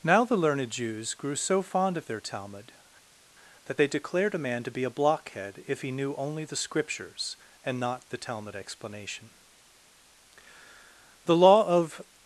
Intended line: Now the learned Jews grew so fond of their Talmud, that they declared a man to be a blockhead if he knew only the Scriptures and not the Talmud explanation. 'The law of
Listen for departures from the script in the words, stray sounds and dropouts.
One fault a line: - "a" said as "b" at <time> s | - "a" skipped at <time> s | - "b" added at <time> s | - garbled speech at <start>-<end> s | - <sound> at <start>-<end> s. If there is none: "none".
none